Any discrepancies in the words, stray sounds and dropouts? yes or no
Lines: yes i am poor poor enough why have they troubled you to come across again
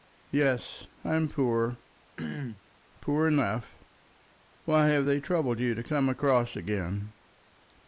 yes